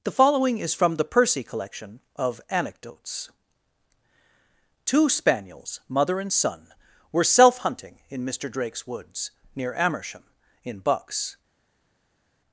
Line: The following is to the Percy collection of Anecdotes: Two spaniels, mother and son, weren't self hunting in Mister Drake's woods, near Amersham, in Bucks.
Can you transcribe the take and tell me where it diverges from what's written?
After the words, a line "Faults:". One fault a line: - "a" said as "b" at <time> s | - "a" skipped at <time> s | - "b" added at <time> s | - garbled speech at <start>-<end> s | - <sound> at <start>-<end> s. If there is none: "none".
The following is from the Percy collection of Anecdotes: Two spaniels, mother and son, were self hunting in Mister Drake's woods, near Amersham, in Bucks.
Faults:
- "to" said as "from" at 0.7 s
- "weren't" said as "were" at 7.1 s